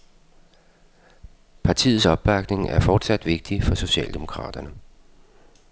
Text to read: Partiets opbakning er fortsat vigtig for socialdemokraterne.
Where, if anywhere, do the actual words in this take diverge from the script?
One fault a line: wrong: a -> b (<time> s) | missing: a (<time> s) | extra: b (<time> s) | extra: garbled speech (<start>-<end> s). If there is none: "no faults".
no faults